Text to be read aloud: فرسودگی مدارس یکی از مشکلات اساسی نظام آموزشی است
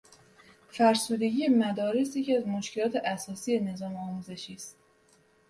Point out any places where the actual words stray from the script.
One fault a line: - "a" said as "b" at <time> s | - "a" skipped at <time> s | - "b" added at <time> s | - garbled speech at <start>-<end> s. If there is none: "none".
none